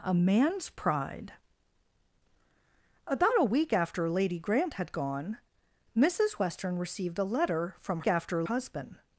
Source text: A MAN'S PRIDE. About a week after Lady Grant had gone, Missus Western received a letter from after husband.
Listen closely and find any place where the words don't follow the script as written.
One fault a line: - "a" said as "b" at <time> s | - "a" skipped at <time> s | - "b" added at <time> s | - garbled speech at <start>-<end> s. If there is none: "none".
none